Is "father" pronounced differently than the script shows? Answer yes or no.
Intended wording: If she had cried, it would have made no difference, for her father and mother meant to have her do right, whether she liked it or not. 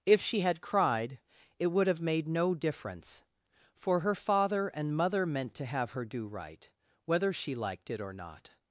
no